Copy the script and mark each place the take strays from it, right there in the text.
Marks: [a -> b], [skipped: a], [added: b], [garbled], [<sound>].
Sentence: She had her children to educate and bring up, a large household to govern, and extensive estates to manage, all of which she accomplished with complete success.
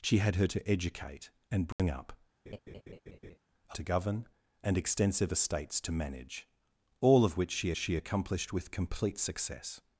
She had her [skipped: children] to educate and bring [dropout] up, [laugh] a [skipped: large household] to govern, and extensive estates to manage, all of which she [added: she] accomplished with complete success.